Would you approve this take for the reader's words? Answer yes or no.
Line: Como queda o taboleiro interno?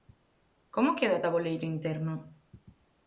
yes